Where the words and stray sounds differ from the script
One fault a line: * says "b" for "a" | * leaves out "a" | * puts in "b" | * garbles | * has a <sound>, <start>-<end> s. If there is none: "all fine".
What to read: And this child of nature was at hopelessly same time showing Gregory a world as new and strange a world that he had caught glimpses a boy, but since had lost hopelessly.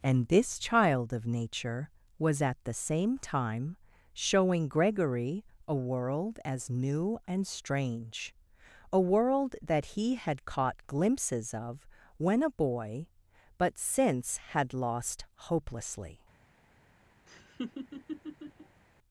* says "the" for "hopelessly"
* puts in "of when"
* has a laugh, 17.3-18.8 s